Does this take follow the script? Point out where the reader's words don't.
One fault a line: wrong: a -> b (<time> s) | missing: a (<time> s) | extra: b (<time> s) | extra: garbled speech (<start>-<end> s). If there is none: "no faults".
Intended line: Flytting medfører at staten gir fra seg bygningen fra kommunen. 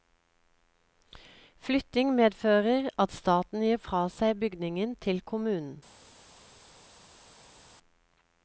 wrong: fra -> til (5.1 s)